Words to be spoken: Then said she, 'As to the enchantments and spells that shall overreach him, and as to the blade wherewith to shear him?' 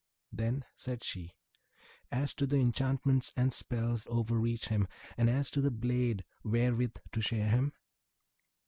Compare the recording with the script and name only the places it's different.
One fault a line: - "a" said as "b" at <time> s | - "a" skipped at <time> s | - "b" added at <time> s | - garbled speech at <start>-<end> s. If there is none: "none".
- "that shall" skipped at 4.1 s